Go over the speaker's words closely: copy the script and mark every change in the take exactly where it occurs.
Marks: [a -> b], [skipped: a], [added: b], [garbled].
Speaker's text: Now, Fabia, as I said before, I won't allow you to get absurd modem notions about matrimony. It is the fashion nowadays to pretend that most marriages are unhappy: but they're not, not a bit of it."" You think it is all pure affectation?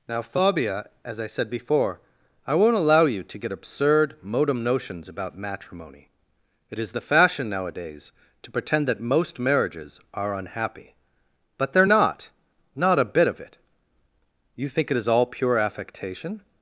Now, Fabia, as I said before, I won't allow you to get absurd modem notions about matrimony. It is the fashion nowadays to pretend that most marriages are unhappy: but they're not, not a bit of it."" You think it is all pure affectation?